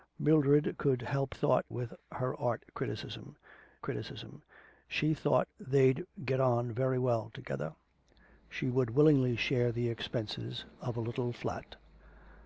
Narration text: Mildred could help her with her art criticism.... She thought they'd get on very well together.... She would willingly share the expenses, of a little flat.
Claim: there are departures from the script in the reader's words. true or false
true